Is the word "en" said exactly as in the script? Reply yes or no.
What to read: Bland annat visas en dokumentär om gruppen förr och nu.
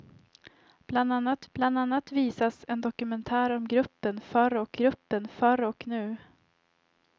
yes